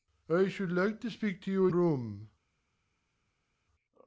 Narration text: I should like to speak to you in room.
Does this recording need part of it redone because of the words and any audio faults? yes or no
no